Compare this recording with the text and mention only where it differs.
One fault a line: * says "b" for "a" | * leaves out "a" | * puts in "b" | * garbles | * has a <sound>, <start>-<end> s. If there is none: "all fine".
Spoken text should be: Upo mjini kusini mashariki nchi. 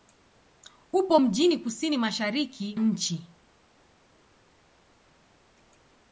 all fine